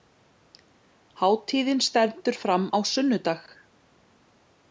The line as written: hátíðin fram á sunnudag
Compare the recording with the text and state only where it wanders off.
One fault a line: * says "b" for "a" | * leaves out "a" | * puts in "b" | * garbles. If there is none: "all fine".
* puts in "stendur"